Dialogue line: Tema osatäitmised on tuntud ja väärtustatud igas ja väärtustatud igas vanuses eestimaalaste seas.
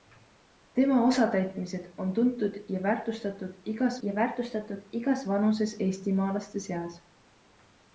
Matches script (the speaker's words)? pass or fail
pass